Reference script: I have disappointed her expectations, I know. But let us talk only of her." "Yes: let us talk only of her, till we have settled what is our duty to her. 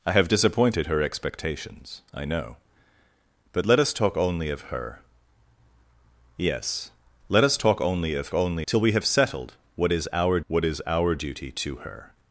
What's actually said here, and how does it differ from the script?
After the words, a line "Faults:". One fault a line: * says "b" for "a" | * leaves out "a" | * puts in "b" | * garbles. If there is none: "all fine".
I have disappointed her expectations, I know. But let us talk only of her." "Yes: let us talk only of only, till we have settled what is our what is our duty to her.
Faults:
* says "only" for "her"
* puts in "what is our"